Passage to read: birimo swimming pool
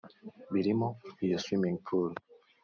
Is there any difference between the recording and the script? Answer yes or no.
yes